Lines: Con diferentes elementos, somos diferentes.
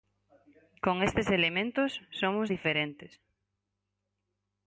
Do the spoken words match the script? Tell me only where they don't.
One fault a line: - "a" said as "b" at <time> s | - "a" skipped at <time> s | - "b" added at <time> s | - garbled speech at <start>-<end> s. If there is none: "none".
- "diferentes" said as "estes" at 1.1 s